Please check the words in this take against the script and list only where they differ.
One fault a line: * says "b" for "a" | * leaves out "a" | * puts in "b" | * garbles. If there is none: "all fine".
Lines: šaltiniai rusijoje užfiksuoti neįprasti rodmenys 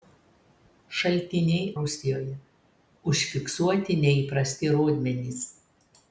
all fine